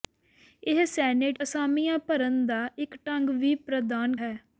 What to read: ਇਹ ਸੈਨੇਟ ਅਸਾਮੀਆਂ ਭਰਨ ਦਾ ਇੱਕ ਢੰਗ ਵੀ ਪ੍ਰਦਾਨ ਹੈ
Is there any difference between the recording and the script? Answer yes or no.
no